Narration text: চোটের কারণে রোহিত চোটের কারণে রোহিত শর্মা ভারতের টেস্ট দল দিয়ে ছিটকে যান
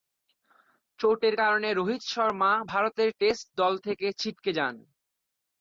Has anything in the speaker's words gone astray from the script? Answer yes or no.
yes